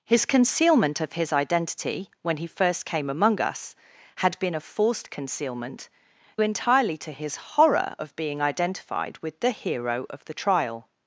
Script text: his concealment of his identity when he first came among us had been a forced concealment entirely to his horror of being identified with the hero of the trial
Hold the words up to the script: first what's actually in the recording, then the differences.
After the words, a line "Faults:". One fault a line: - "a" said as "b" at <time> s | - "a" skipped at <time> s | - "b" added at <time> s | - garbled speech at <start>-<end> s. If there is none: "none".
his concealment of his identity when he first came among us had been a forced concealment entirely to his horror of being identified with the hero of the trial
Faults:
none